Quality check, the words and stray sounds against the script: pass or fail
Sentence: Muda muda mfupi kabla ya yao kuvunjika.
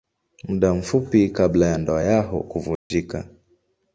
fail